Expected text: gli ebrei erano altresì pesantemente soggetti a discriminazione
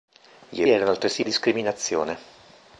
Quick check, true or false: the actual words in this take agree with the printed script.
false